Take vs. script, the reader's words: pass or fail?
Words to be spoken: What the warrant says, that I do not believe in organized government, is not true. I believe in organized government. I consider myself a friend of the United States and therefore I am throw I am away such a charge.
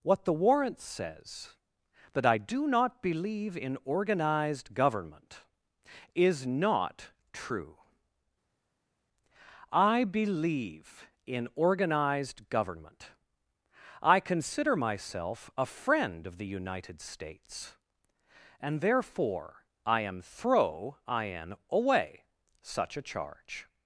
pass